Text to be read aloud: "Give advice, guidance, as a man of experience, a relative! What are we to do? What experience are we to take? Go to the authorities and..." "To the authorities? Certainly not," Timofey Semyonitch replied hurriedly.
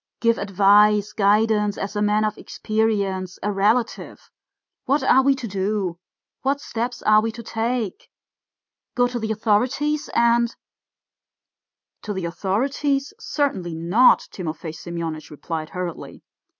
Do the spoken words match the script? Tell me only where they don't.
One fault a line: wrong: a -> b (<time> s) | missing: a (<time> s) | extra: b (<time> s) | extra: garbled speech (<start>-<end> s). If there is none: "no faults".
wrong: experience -> steps (6.6 s)